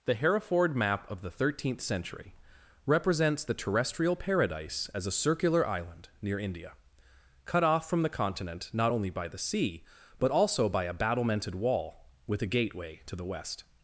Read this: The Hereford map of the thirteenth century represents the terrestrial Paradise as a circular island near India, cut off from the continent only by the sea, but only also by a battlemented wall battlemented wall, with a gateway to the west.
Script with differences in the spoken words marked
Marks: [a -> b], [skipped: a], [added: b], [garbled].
The Hereford map of the thirteenth century represents the terrestrial Paradise as a circular island near India, cut off from the continent [added: not] only by the sea, but [skipped: only] also by a battlemented wall [skipped: battlemented wall,] with a gateway to the west.